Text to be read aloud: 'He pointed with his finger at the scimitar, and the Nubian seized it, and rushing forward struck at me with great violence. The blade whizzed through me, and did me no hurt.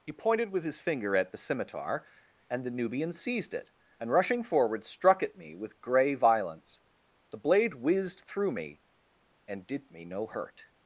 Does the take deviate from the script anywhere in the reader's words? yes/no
yes